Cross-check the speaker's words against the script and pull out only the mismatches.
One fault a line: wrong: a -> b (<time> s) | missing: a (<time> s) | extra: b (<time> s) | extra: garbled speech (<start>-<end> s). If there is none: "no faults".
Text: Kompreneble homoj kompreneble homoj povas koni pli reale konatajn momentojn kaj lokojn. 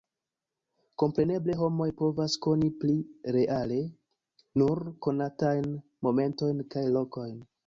missing: kompreneble homoj (1.9 s)
extra: nur (4.6 s)